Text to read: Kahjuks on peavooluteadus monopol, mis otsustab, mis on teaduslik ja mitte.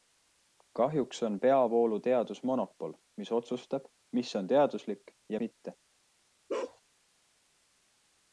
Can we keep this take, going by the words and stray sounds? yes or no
no